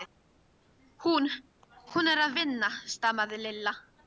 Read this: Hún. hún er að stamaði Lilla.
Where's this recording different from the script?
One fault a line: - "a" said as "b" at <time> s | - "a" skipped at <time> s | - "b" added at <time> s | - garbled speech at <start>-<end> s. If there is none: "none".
- "vinna" added at 2.4 s